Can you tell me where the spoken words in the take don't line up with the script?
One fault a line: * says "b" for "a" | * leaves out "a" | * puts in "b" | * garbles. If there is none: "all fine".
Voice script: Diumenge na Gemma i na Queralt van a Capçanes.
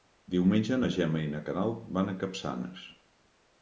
all fine